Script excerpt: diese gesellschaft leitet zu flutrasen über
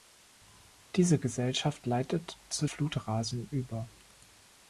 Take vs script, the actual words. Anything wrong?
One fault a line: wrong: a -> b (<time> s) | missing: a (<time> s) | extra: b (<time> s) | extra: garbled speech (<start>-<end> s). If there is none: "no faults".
no faults